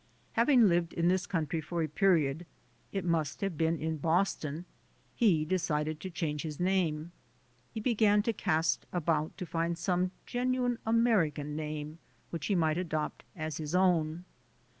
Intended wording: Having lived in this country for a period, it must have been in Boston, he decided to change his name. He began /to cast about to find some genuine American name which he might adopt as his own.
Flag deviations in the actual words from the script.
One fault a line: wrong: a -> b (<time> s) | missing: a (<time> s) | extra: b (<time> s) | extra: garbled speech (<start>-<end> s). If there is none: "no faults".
no faults